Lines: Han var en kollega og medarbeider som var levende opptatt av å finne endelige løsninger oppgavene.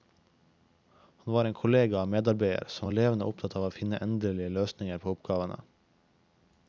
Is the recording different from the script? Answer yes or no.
yes